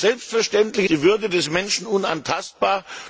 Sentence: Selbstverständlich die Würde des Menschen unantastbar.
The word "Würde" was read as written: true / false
true